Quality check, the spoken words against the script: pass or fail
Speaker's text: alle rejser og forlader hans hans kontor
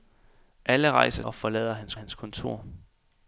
pass